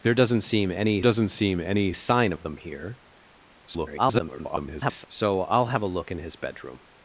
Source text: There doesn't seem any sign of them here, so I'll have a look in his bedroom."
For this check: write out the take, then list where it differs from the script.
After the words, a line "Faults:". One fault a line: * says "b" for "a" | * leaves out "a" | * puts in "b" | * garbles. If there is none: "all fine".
There doesn't seem any doesn't seem any sign of them here, [garbled] so I'll have a look in his bedroom."
Faults:
* puts in "doesn't seem any"
* garbles